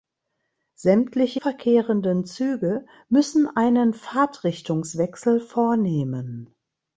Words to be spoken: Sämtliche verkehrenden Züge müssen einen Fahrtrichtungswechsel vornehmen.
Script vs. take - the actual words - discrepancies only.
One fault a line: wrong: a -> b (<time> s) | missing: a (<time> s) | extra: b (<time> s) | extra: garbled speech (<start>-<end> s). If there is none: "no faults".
no faults